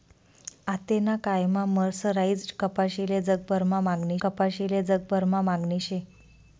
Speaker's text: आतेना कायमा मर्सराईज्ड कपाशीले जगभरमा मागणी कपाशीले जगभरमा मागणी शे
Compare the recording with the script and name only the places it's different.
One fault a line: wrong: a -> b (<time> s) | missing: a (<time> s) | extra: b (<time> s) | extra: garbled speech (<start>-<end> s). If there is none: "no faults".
no faults